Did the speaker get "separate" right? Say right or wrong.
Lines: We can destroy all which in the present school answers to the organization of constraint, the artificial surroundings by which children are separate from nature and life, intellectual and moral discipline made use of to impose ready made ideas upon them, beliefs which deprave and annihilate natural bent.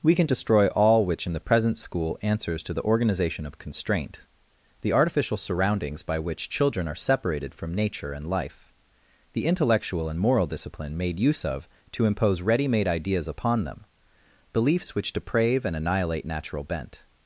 wrong